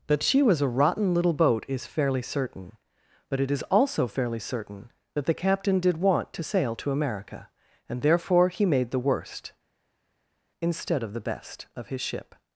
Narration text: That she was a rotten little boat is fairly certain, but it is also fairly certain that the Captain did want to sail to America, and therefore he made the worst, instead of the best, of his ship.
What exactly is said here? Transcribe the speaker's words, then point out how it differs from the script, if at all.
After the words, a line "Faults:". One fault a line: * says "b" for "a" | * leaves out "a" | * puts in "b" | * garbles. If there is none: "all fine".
That she was a rotten little boat is fairly certain, but it is also fairly certain that the Captain did want to sail to America, and therefore he made the worst, instead of the best, of his ship.
Faults:
all fine